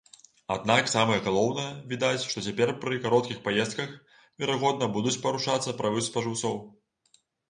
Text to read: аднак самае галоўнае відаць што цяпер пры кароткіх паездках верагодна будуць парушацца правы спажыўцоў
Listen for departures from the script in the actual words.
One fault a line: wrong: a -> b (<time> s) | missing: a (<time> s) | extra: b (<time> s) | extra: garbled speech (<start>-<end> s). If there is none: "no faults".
no faults